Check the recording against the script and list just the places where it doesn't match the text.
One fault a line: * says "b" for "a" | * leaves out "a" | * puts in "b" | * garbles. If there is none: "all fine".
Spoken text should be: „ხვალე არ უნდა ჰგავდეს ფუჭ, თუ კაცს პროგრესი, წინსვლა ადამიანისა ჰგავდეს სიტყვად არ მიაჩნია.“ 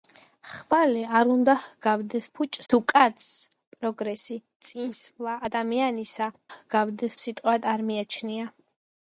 all fine